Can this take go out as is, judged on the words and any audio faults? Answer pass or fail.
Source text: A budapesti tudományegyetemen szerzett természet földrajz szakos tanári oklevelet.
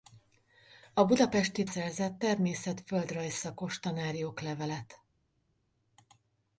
fail